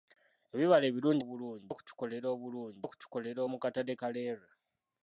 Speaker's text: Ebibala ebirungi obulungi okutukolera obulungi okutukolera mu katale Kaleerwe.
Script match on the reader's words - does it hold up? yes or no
yes